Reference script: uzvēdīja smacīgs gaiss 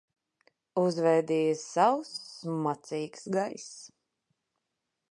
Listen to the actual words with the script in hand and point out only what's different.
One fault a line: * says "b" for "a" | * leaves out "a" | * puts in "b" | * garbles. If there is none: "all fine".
* puts in "sauss"